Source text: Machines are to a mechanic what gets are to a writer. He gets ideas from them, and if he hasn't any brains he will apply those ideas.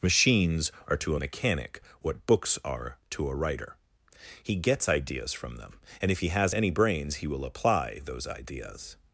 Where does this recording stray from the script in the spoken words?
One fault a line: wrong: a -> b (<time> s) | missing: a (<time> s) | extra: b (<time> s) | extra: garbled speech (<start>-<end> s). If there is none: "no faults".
wrong: gets -> books (2.3 s)
wrong: hasn't -> has (6.3 s)